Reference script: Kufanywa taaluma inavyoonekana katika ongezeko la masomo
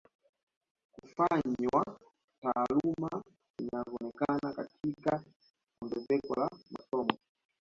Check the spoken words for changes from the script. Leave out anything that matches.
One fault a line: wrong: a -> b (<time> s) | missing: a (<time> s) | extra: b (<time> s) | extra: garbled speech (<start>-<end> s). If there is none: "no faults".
no faults